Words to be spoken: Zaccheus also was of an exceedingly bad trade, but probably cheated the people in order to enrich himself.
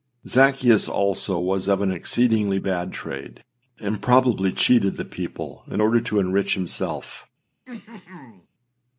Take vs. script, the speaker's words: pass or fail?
fail